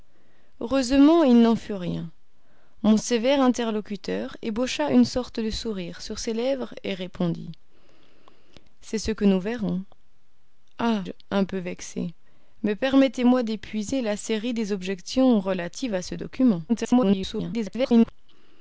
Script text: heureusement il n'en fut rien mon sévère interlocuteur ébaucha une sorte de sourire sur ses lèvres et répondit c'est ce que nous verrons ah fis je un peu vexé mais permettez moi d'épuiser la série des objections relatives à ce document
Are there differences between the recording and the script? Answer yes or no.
yes